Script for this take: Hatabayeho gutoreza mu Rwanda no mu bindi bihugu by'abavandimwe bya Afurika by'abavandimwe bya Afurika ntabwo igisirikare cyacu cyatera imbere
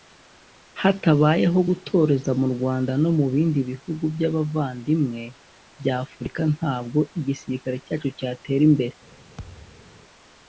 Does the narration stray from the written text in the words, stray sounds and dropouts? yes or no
yes